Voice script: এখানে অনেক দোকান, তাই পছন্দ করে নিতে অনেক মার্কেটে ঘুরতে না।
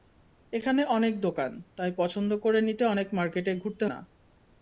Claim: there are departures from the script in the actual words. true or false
false